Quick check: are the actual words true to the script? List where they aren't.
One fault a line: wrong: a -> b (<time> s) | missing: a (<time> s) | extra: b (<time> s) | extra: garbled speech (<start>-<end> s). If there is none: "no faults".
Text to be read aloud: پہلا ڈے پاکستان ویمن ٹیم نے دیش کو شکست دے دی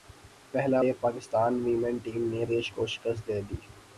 no faults